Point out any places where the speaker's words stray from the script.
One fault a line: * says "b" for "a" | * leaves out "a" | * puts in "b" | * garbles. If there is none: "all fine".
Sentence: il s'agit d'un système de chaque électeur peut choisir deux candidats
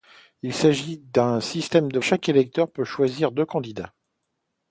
all fine